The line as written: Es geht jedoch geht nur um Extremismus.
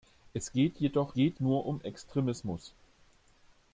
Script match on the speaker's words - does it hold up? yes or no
yes